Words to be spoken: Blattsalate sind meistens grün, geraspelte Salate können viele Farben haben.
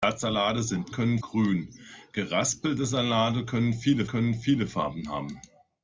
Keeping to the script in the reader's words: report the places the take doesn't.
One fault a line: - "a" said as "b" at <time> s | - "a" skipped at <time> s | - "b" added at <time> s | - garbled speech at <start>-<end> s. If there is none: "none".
- "meistens" said as "können" at 0.9 s
- "können viele" added at 4.0 s